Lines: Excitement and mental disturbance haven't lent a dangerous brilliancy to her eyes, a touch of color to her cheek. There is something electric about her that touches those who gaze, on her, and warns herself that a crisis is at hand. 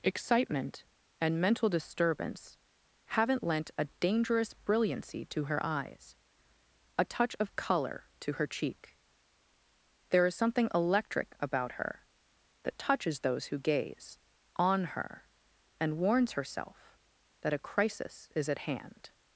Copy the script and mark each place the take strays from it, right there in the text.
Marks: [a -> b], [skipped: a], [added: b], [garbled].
Excitement and mental disturbance haven't lent a dangerous brilliancy to her eyes, a touch of color to her cheek. There is something electric about her that touches those who gaze, on her, and warns herself that a crisis is at hand.